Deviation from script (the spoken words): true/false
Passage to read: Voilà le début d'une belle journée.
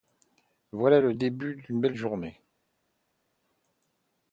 false